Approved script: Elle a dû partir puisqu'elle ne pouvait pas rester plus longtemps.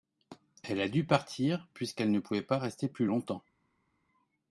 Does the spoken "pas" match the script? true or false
true